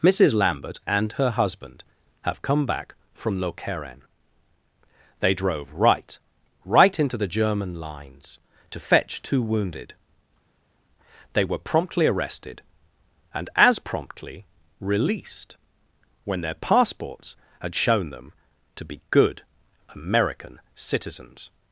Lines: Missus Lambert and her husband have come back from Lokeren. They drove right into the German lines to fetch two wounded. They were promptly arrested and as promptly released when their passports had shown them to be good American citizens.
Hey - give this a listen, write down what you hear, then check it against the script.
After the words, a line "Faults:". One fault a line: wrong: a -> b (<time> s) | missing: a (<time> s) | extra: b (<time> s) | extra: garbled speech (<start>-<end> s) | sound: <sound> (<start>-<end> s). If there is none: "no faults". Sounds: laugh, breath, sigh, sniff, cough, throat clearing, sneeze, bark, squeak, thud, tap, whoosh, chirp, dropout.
Missus Lambert and her husband have come back from Lokeren. They drove right right into the German lines to fetch two wounded. They were promptly arrested and as promptly released when their passports had shown them to be good American citizens.
Faults:
extra: right (6.7 s)